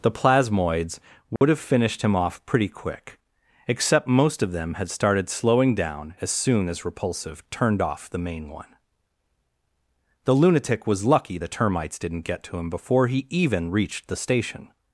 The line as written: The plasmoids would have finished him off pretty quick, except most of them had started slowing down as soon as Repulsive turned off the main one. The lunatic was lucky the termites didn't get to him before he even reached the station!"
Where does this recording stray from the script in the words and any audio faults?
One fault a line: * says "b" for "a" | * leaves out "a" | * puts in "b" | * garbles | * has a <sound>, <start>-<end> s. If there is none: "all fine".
* has a dropout, 1.4-1.4 s